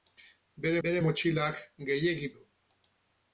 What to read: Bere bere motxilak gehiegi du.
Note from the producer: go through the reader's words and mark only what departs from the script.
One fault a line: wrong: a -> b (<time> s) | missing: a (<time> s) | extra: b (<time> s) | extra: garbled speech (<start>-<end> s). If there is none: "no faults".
no faults